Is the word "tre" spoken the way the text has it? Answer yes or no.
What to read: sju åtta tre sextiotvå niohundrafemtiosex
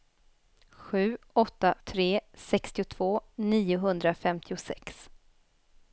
yes